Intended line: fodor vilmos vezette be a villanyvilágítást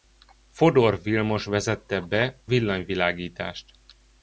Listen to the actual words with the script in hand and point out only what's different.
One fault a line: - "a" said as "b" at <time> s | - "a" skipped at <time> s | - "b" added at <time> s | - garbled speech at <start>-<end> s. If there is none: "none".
- "a" skipped at 2.4 s